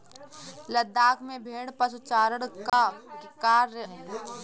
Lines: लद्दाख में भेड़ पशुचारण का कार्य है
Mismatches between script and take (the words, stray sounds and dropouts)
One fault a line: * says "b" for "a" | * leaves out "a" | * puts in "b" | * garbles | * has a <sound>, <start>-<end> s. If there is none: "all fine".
* has a dropout, 2.7-2.7 s